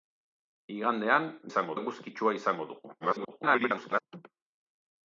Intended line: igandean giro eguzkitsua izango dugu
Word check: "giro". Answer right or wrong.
wrong